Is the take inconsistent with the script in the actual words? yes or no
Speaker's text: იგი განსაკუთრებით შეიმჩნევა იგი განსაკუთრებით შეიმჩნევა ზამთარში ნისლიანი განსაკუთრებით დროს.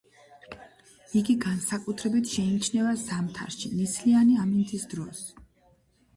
yes